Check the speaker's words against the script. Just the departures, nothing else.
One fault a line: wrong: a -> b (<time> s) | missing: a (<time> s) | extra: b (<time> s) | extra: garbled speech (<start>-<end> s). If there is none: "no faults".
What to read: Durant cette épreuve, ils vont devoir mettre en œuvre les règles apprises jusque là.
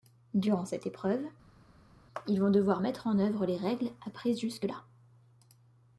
no faults